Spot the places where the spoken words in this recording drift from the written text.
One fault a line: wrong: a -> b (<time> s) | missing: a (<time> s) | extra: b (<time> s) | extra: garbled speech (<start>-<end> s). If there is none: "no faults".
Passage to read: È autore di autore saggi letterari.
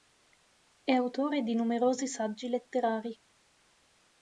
wrong: autore -> numerosi (1.5 s)